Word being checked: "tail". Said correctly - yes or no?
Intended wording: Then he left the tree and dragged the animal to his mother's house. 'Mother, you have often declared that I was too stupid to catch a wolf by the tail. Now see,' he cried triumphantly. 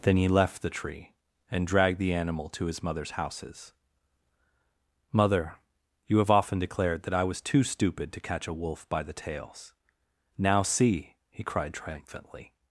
no